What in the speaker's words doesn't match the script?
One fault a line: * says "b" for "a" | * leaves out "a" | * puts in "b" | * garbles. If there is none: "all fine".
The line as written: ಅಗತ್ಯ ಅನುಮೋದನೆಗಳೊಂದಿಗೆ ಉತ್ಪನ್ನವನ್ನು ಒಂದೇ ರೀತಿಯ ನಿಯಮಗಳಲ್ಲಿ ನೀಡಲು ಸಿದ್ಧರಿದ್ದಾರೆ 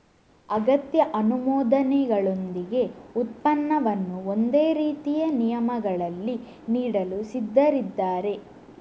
all fine